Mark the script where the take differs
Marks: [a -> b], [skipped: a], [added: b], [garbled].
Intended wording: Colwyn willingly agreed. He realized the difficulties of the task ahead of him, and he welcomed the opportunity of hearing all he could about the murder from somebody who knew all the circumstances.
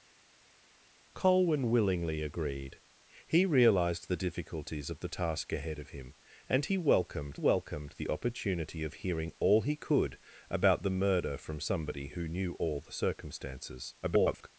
Colwyn willingly agreed. He realized the difficulties of the task ahead of him, and he welcomed [added: welcomed] the opportunity of hearing all he could about the murder from somebody who knew all the circumstances. [garbled]